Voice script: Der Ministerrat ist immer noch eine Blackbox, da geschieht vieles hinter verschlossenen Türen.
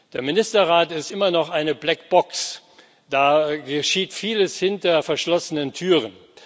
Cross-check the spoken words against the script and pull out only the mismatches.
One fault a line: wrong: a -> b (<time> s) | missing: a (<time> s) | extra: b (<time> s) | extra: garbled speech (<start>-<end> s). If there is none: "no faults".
no faults